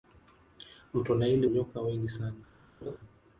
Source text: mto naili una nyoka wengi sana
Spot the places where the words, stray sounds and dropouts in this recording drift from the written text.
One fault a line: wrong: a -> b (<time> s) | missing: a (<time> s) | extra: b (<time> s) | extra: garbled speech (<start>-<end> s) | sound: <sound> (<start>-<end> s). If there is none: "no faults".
missing: una (1.5 s)
sound: laugh (2.8-3.0 s)